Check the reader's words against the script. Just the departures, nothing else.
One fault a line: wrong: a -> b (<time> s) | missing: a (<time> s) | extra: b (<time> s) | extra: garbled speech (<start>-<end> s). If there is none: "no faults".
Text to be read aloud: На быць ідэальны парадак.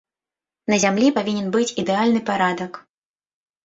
extra: зямлі павінен (0.8 s)